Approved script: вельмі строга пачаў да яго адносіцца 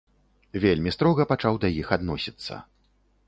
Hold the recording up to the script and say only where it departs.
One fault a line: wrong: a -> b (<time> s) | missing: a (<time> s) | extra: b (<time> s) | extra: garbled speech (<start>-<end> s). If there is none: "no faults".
wrong: яго -> іх (1.8 s)